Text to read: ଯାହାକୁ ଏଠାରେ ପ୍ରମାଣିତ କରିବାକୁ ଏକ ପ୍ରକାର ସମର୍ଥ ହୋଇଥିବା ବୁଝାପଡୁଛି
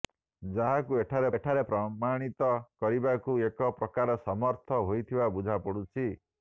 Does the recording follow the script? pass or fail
fail